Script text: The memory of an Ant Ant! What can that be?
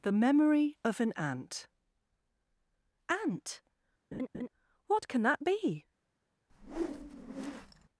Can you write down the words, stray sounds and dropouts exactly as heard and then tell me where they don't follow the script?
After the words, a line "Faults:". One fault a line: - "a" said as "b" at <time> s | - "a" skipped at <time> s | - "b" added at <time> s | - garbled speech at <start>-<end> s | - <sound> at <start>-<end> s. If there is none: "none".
The memory of an Ant Ant! What can that be?
Faults:
- laugh at 4.1-4.5 s
- whoosh at 6.5-7.9 s